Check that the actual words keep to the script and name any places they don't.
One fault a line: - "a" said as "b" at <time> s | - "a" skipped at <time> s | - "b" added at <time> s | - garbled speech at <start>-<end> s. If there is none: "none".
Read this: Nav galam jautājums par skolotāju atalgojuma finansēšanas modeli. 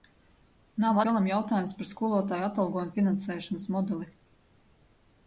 none